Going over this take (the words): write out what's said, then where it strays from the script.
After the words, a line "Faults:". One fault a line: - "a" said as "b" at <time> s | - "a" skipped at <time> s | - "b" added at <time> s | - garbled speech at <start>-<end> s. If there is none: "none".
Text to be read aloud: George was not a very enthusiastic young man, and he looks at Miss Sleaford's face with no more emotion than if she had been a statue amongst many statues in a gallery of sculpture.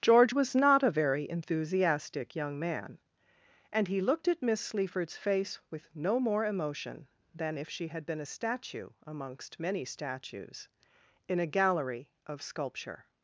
George was not a very enthusiastic young man, and he looked at Miss Sleaford's face with no more emotion than if she had been a statue amongst many statues in a gallery of sculpture.
Faults:
- "looks" said as "looked" at 4.0 s